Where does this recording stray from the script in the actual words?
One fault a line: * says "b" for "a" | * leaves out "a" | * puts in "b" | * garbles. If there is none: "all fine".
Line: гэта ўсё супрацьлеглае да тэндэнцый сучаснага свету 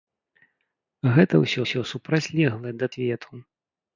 * puts in "ўсё"
* leaves out "тэндэнцый сучаснага"